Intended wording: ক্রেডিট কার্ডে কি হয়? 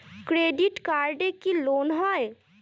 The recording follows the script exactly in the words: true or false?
false